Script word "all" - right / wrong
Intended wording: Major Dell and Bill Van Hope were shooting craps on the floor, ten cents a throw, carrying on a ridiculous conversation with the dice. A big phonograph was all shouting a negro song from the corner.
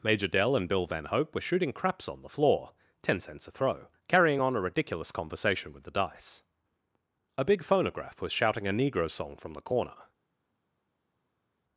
wrong